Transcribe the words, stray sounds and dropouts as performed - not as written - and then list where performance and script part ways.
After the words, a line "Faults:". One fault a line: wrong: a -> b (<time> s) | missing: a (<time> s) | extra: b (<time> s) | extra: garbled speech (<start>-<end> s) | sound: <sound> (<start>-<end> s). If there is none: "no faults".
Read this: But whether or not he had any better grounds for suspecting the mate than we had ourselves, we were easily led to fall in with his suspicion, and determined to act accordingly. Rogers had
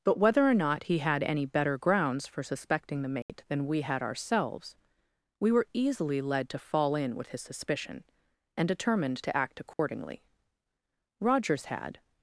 But whether or not he had any better grounds for suspecting the mate than we had ourselves, we were easily led to fall in with his suspicion, and determined to act accordingly. Rogers had
Faults:
sound: dropout (3.2-3.3 s)
sound: dropout (9.7-9.8 s)